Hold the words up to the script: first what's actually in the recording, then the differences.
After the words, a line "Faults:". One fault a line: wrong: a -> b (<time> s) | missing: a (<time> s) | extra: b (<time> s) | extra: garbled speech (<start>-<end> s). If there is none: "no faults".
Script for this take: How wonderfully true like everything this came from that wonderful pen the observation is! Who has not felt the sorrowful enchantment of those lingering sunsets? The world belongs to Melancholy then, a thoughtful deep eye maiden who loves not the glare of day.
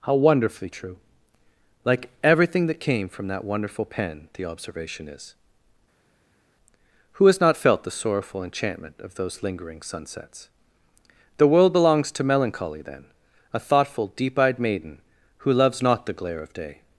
How wonderfully true like everything that came from that wonderful pen the observation is! Who has not felt the sorrowful enchantment of those lingering sunsets? The world belongs to Melancholy then, a thoughtful deep eyed maiden who loves not the glare of day.
Faults:
wrong: this -> that (2.7 s)
wrong: eye -> eyed (14.4 s)